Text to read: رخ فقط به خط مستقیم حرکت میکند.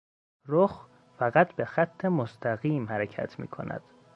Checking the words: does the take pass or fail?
pass